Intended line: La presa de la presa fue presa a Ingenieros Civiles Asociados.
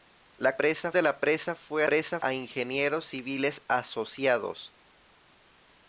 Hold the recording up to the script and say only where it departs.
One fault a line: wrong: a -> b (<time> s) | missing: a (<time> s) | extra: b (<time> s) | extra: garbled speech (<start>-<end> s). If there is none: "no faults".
no faults